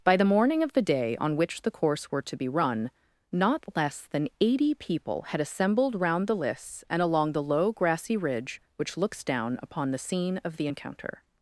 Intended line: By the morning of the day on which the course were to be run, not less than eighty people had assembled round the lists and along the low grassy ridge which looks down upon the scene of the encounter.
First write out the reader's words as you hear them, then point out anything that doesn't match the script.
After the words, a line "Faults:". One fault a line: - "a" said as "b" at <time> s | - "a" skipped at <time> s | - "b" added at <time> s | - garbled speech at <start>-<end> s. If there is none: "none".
By the morning of the day on which the course were to be run, not less than eighty people had assembled round the lists and along the low grassy ridge which looks down upon the scene of the encounter.
Faults:
none